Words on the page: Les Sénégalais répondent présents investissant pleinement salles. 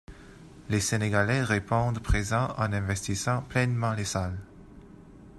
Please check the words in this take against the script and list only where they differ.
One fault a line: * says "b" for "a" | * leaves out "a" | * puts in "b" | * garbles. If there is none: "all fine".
* puts in "en"
* puts in "les"